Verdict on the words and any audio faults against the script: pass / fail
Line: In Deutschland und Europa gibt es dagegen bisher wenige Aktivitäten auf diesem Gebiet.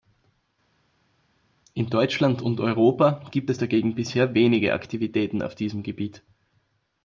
pass